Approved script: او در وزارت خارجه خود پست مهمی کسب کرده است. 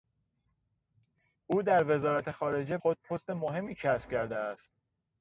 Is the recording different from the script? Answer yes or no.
no